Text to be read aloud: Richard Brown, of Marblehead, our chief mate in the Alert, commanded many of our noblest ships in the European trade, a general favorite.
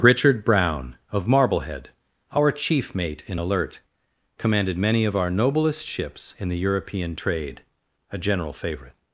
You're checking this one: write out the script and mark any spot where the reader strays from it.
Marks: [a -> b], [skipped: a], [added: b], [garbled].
Richard Brown, of Marblehead, our chief mate in [skipped: the] Alert, commanded many of our noblest ships in the European trade, a general favorite.